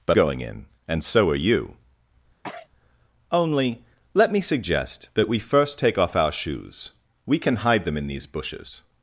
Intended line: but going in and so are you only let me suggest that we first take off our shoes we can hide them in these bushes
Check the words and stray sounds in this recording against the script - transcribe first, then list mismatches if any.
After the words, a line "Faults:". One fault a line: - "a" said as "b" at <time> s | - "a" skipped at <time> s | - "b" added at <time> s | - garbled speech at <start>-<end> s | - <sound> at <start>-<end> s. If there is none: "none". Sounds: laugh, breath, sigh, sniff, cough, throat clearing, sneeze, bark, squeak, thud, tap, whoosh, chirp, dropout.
but going in and so are you only let me suggest that we first take off our shoes we can hide them in these bushes
Faults:
- sneeze at 2.4-2.7 s